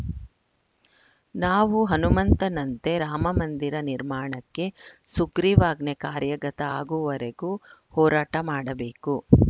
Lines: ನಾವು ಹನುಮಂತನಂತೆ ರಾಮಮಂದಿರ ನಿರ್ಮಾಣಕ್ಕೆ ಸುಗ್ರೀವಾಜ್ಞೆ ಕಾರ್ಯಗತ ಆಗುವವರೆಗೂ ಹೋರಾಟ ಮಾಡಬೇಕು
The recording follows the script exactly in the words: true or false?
true